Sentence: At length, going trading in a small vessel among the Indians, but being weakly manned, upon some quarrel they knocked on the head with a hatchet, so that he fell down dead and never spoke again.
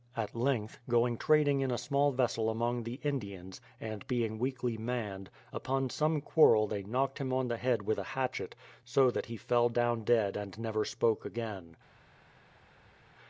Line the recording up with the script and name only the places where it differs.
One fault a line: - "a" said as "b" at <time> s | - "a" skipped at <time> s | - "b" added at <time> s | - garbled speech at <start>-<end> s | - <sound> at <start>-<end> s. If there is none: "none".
- "but" said as "and" at 3.8 s
- "him" added at 7.2 s